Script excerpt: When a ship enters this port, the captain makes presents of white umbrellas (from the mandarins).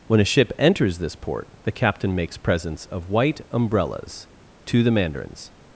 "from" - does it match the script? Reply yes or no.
no